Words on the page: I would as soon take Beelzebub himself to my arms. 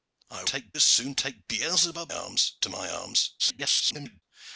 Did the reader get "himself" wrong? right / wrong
wrong